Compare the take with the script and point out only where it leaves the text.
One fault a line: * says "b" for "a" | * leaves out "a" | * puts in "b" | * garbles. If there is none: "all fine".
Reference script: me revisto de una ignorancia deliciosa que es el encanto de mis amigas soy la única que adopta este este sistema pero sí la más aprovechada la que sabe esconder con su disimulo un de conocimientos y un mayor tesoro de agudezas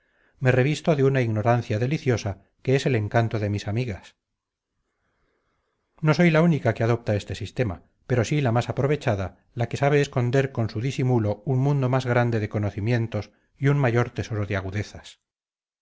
* puts in "no"
* leaves out "este"
* puts in "mundo más grande"